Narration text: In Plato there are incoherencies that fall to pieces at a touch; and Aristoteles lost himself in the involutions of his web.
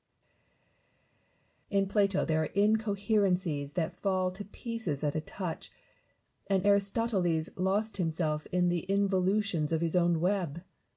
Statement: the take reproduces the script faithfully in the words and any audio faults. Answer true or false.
false